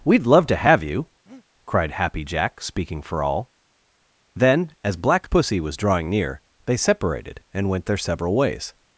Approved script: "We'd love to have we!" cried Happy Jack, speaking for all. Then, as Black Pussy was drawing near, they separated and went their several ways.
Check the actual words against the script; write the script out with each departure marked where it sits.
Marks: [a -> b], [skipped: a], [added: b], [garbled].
"We'd love to have [we!" -> you] cried Happy Jack, speaking for all. Then, as Black Pussy was drawing near, they separated and went their several ways.